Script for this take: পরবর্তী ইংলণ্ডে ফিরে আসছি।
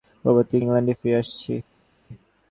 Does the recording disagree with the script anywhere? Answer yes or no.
no